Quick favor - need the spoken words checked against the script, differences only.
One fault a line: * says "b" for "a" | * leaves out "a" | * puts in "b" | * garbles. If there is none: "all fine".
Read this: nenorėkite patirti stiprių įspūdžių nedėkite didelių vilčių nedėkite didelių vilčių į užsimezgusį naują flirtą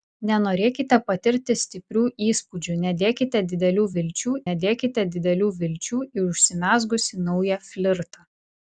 all fine